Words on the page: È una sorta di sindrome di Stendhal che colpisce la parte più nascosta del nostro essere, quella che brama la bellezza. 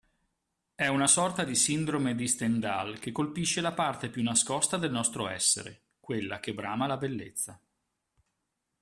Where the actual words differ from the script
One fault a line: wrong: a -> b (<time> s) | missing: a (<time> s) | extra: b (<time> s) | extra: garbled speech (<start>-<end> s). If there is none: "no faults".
no faults